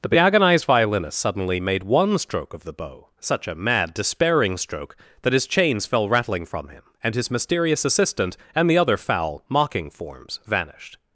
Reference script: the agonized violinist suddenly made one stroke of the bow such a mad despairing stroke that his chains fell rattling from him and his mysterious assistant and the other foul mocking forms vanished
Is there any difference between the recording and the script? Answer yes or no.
no